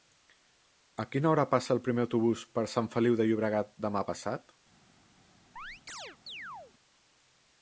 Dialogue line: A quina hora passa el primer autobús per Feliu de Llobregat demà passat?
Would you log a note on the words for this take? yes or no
yes